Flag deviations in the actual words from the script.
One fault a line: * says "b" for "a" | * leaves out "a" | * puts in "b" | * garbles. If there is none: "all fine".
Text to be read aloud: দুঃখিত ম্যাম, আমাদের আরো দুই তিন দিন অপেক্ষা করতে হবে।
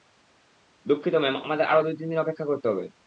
all fine